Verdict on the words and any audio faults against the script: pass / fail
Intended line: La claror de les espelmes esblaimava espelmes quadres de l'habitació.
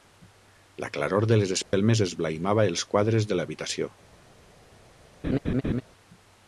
fail